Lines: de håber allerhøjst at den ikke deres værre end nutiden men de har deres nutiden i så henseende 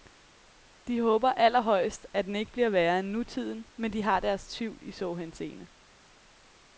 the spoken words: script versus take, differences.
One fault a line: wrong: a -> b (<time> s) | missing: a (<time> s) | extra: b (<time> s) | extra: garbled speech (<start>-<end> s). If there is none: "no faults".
wrong: deres -> bliver (2.5 s)
wrong: nutiden -> tvivl (4.5 s)